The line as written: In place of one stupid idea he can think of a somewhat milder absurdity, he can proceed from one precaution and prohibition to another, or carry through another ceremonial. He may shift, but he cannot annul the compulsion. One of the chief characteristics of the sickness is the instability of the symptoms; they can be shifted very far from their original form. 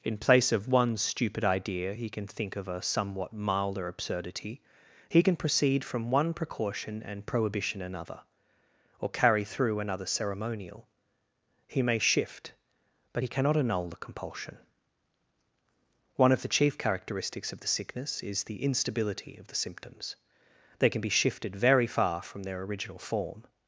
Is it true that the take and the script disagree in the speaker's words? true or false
true